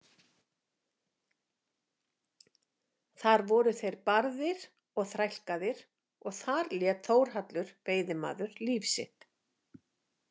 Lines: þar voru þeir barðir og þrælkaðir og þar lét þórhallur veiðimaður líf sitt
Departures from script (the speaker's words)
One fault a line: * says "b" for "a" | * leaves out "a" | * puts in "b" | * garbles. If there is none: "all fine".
all fine